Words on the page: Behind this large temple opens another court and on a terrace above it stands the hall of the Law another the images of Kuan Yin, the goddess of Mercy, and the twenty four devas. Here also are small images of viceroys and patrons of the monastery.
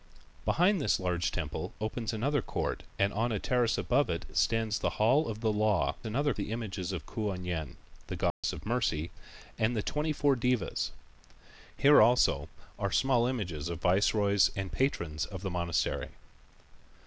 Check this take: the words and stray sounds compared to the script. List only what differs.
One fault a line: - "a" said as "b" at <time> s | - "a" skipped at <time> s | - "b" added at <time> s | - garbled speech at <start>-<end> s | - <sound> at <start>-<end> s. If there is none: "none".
- dropout at 8.3-8.4 s